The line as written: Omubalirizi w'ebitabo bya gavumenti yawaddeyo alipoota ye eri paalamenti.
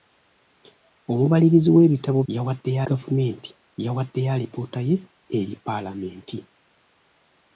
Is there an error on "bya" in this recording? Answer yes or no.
yes